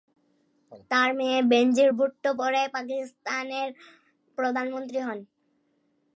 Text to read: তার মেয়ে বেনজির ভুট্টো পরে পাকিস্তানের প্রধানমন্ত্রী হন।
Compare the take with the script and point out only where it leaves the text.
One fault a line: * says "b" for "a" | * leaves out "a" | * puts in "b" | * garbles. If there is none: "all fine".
all fine